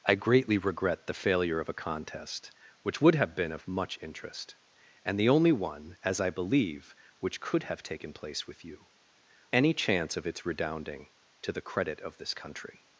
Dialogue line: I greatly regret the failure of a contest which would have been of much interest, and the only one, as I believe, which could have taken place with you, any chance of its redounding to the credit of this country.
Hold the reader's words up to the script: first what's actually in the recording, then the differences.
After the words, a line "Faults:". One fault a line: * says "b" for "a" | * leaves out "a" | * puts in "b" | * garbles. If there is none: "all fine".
I greatly regret the failure of a contest which would have been of much interest, and the only one, as I believe, which could have taken place with you, any chance of its redounding to the credit of this country.
Faults:
all fine